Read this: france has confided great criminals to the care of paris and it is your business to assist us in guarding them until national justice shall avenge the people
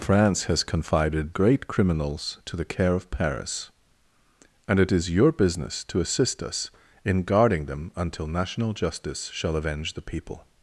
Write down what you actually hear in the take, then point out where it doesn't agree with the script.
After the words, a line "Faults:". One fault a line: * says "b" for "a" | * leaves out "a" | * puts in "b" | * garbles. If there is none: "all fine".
france has confided great criminals to the care of paris and it is your business to assist us in guarding them until national justice shall avenge the people
Faults:
all fine